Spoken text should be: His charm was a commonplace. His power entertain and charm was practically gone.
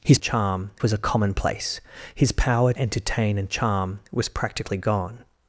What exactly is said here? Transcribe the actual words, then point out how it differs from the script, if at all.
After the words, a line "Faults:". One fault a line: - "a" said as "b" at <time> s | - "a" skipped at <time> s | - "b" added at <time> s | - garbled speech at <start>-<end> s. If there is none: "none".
His charm was a commonplace. His power entertain and charm was practically gone.
Faults:
none